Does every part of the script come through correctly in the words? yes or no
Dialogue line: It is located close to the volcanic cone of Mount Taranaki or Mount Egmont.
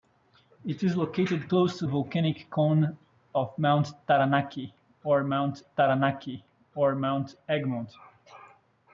no